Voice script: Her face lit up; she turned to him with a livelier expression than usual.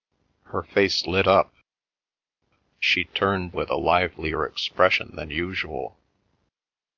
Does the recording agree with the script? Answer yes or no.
no